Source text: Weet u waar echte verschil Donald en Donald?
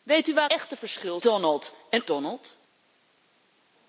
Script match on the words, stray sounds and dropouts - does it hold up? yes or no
yes